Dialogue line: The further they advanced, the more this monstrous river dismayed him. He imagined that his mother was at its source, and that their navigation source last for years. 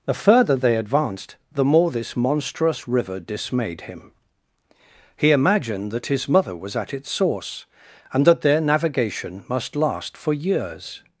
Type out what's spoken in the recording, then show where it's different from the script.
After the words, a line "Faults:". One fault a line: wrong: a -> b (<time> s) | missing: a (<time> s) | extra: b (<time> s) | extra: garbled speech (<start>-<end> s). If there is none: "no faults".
The further they advanced, the more this monstrous river dismayed him. He imagined that his mother was at its source, and that their navigation must last for years.
Faults:
wrong: source -> must (9.5 s)